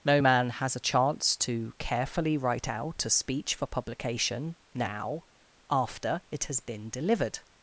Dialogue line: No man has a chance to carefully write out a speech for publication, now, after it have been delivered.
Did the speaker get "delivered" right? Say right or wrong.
right